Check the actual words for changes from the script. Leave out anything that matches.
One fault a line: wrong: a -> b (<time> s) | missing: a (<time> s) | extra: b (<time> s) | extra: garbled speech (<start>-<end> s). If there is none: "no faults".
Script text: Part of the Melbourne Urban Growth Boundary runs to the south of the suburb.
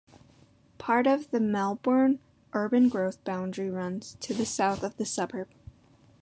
no faults